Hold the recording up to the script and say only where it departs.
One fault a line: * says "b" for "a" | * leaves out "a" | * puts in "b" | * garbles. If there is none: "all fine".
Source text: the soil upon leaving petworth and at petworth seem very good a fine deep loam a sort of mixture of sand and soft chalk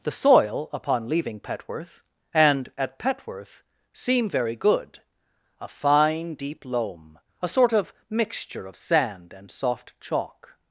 all fine